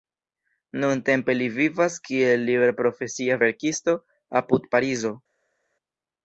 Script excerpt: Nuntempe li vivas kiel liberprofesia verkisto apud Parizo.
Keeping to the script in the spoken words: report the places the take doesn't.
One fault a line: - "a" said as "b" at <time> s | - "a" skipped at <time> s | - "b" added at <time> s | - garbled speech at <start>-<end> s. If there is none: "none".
none